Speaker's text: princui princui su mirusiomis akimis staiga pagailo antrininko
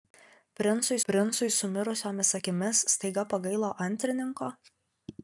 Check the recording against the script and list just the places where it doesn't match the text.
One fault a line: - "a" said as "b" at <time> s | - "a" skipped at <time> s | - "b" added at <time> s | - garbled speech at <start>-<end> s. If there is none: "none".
none